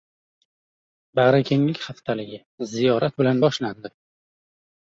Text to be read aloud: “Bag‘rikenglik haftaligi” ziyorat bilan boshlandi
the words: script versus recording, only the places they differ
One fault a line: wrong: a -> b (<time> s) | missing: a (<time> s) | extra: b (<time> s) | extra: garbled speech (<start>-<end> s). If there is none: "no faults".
no faults